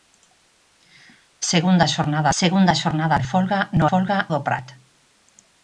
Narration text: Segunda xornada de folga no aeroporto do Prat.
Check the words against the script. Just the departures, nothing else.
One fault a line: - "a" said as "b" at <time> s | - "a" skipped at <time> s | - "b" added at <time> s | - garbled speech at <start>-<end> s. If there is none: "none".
- "segunda xornada" added at 2.4 s
- "aeroporto" said as "folga" at 3.9 s